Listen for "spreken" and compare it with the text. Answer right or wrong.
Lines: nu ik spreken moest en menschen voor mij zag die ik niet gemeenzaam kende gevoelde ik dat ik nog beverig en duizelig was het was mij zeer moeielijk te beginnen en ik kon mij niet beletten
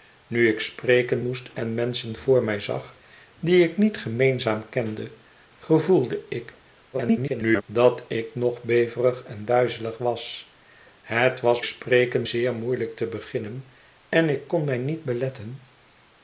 right